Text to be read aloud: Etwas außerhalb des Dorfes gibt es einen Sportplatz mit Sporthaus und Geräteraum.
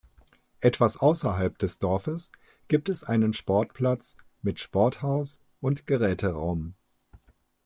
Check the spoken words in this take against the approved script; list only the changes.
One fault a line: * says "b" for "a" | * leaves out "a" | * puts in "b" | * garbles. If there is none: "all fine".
all fine